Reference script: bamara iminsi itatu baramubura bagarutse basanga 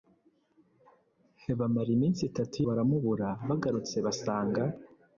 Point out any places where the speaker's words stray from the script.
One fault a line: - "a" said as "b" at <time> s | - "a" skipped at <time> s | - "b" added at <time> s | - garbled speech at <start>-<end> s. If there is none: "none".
none